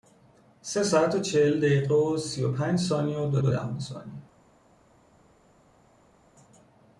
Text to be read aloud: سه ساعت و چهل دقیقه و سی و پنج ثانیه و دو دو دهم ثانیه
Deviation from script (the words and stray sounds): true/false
false